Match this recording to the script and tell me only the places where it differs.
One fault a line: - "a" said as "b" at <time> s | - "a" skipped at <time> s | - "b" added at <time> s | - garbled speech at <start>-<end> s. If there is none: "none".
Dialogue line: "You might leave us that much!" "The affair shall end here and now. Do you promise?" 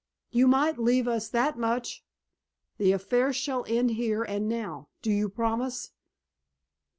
none